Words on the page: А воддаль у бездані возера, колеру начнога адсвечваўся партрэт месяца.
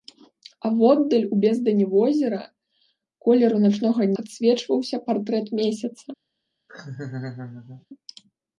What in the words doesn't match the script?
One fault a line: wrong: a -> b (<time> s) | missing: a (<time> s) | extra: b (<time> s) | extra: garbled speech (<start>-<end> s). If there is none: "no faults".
no faults